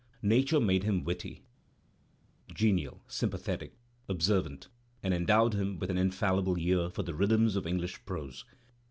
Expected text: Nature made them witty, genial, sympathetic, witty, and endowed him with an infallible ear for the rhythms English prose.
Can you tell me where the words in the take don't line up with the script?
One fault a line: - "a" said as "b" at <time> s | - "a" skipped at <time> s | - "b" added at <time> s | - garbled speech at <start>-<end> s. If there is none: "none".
- "them" said as "him" at 0.8 s
- "witty" said as "observant" at 4.1 s
- "of" added at 7.5 s